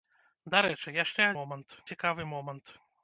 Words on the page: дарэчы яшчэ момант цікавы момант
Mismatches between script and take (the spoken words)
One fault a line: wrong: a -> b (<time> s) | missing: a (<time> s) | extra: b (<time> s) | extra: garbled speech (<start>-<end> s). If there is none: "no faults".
no faults